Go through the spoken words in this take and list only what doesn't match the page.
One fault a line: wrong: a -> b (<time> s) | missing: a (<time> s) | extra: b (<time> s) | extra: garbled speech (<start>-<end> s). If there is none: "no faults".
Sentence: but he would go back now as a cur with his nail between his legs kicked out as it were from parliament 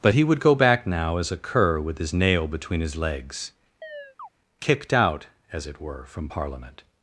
no faults